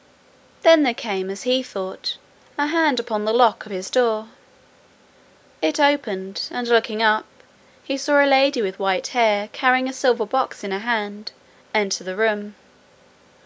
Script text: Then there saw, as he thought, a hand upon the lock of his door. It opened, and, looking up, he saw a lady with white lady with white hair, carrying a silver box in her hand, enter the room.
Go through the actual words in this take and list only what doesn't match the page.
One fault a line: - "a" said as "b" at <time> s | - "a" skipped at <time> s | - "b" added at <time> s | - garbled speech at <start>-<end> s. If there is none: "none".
- "saw" said as "came" at 0.9 s
- "lady with white" skipped at 9.1 s